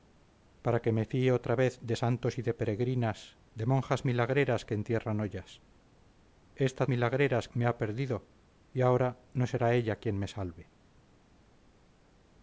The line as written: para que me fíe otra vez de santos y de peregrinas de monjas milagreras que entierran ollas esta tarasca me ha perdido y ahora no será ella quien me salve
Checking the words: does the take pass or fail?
fail